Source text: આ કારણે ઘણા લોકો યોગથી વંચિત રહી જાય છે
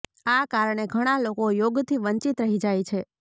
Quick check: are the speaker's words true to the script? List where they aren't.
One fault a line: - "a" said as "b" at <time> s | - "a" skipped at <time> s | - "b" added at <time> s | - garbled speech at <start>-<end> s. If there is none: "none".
none